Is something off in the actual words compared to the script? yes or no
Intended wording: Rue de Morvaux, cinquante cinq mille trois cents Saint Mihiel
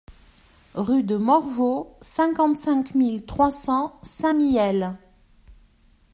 no